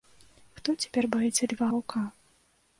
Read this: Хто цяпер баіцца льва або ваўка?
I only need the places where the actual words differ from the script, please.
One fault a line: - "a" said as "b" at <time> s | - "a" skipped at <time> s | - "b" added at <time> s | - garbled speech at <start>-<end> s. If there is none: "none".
- "або" skipped at 1.7 s